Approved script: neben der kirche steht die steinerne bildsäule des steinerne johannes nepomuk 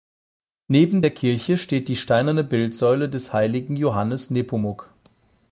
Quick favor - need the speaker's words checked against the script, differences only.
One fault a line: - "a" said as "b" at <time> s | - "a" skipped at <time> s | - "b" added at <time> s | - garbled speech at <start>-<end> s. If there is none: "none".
- "steinerne" said as "heiligen" at 3.3 s